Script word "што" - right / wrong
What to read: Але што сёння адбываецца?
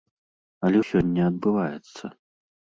wrong